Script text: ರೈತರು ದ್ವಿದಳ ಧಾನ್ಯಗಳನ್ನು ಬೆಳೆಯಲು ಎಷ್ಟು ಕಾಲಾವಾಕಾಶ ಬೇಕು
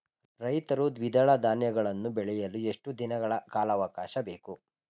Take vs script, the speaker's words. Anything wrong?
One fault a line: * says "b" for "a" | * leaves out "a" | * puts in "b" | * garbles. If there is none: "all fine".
* puts in "ದಿನಗಳ"